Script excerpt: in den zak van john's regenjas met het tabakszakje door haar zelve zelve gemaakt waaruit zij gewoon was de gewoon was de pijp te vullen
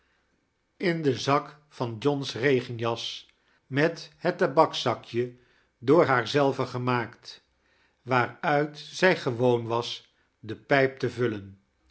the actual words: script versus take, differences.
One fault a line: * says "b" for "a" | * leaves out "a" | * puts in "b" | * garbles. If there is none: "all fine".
* leaves out "zelve"
* leaves out "gewoon was de"